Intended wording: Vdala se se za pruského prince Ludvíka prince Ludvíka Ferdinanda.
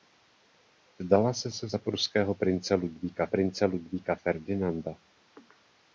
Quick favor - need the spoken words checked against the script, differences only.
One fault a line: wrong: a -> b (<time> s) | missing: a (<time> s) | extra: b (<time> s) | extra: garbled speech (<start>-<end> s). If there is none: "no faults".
no faults